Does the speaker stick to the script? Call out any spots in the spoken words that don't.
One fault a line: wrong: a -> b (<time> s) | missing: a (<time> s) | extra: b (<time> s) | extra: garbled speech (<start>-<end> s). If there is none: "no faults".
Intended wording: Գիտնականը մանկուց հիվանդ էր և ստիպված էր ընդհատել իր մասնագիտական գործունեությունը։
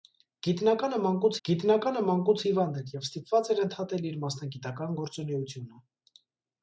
extra: գիտնականը մանկուց (1.5 s)